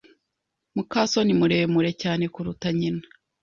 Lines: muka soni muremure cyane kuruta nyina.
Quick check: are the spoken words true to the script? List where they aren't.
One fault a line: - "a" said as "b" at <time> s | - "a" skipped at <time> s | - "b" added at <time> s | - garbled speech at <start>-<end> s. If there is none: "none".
none